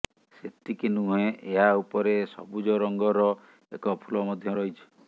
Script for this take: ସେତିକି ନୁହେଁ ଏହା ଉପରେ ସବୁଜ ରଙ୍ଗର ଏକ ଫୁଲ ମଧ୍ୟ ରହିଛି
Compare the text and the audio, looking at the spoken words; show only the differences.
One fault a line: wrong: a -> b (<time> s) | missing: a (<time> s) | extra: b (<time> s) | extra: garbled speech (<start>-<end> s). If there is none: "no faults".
no faults